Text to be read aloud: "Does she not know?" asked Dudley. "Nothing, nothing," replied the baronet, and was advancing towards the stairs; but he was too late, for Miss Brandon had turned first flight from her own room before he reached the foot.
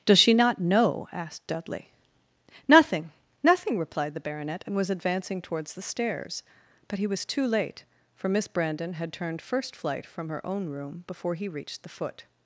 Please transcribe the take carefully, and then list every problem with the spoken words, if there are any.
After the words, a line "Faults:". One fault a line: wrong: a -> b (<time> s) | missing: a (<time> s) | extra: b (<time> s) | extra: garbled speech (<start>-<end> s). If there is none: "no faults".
"Does she not know?" asked Dudley. "Nothing, nothing," replied the baronet, and was advancing towards the stairs; but he was too late, for Miss Brandon had turned first flight from her own room before he reached the foot.
Faults:
no faults